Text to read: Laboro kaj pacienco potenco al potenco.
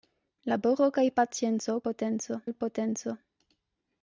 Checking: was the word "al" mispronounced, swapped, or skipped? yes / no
no